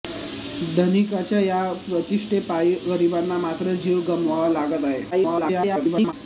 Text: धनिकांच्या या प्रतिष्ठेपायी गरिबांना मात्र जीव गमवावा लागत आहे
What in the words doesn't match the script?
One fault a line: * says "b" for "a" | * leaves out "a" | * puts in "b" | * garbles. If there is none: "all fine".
* garbles